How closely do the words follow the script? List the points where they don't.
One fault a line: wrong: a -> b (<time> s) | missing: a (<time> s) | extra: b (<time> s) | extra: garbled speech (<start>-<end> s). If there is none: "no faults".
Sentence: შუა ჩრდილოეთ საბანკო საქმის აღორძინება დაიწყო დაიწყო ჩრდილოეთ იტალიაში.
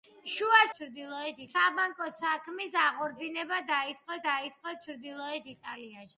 no faults